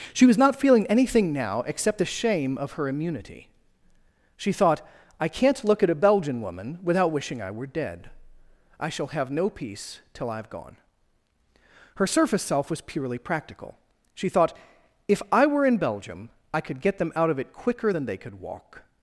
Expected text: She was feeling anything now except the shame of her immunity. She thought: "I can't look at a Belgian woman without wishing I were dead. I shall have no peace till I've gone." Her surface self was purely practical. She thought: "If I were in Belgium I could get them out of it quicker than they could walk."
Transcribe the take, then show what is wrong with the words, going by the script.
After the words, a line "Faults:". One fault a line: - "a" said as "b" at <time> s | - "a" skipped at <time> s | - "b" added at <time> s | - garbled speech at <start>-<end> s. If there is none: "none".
She was not feeling anything now except the shame of her immunity. She thought: "I can't look at a Belgian woman without wishing I were dead. I shall have no peace till I've gone." Her surface self was purely practical. She thought: "If I were in Belgium I could get them out of it quicker than they could walk."
Faults:
- "not" added at 0.4 s